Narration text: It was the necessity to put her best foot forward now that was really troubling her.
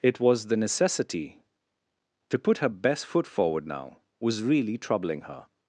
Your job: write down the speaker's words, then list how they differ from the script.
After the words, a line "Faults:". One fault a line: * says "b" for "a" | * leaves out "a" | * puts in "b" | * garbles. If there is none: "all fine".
It was the necessity to put her best foot forward now was really troubling her.
Faults:
* leaves out "that"